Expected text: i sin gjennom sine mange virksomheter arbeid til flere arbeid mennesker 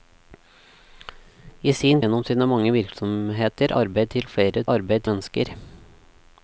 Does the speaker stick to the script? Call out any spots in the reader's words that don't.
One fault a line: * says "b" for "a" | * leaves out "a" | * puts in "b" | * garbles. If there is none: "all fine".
all fine